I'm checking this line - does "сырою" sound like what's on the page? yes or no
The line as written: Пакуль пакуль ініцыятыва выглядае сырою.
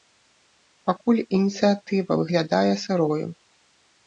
yes